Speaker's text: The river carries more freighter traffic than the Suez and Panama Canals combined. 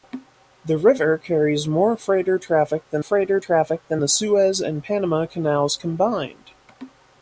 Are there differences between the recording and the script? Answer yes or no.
yes